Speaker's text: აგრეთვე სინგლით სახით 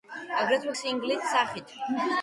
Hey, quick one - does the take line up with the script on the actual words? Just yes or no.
yes